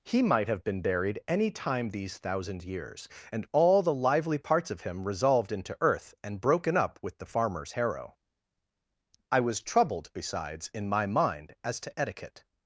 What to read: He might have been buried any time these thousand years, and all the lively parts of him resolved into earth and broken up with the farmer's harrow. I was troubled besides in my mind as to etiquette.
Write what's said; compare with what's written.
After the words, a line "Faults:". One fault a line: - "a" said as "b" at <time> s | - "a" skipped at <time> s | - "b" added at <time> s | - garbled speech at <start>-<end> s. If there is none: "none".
He might have been buried any time these thousand years, and all the lively parts of him resolved into earth and broken up with the farmer's harrow. I was troubled besides in my mind as to etiquette.
Faults:
none